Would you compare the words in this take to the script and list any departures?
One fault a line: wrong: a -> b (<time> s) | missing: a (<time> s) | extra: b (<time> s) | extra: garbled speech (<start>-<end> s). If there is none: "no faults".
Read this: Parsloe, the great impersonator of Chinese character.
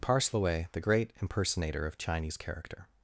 no faults